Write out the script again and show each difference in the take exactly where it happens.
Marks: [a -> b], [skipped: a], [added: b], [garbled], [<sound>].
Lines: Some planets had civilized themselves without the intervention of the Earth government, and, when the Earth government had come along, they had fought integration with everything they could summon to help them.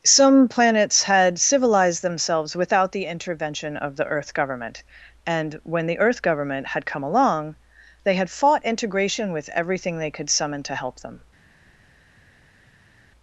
Some planets had civilized themselves without the intervention of the Earth government, and, when the Earth government had come along, they had fought integration with everything they could summon to help them.